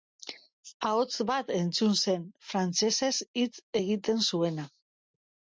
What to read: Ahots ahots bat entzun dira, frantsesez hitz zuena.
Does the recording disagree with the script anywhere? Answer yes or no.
yes